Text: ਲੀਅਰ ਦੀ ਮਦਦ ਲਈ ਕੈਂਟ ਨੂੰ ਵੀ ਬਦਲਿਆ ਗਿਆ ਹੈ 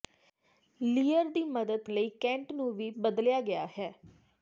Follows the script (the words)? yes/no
yes